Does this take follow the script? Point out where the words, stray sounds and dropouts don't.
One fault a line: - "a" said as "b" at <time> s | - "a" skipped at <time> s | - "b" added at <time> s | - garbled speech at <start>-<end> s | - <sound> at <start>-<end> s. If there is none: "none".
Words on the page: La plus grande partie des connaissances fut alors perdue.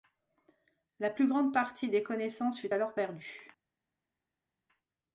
none